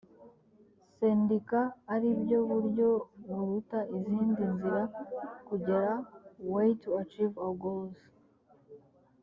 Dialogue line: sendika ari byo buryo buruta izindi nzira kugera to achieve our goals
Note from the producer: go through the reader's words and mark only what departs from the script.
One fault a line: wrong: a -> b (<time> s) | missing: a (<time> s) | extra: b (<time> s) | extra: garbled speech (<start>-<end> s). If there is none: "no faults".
extra: way (6.5 s)